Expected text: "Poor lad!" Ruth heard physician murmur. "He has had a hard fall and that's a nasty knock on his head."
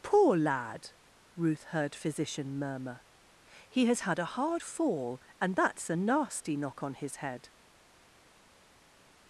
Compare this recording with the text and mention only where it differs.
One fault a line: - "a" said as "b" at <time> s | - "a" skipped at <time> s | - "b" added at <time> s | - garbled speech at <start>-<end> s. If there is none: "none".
none